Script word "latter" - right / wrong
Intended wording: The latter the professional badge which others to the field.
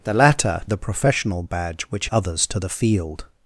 right